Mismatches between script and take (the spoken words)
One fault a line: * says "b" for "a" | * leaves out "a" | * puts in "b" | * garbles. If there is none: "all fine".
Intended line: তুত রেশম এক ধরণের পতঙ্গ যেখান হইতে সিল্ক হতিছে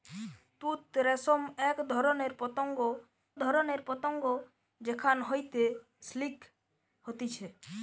* puts in "ধরণের পতঙ্গ"